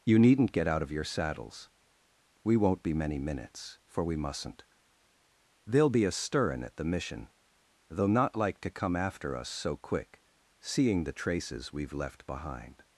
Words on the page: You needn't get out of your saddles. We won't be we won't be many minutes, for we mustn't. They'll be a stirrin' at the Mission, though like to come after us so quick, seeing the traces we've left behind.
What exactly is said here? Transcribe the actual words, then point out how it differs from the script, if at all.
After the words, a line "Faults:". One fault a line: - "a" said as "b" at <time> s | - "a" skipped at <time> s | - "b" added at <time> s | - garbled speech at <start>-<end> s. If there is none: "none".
You needn't get out of your saddles. We won't be many minutes, for we mustn't. They'll be a stirrin' at the Mission, though not like to come after us so quick, seeing the traces we've left behind.
Faults:
- "we won't be" skipped at 2.9 s
- "not" added at 8.1 s